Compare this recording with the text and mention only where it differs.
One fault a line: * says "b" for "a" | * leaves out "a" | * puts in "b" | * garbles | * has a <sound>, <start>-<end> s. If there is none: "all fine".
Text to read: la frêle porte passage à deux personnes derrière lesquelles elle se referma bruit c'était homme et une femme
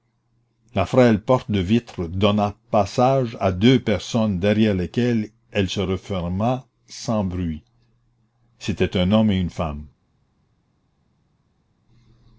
* puts in "de vitre donna"
* puts in "sans"
* puts in "un"